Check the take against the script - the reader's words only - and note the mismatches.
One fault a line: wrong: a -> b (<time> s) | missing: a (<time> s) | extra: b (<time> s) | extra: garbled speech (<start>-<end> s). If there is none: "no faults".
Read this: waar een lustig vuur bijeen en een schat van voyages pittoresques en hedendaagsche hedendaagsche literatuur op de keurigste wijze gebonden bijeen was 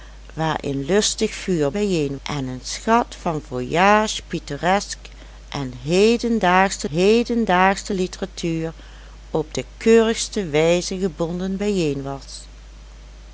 no faults